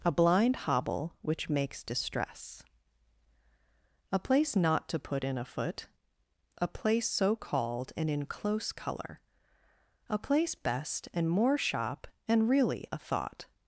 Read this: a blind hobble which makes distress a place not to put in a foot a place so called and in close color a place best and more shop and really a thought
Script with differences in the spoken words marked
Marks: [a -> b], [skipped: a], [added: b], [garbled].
a blind hobble which makes distress a place not to put in a foot a place so called and in close color a place best and more shop and really a thought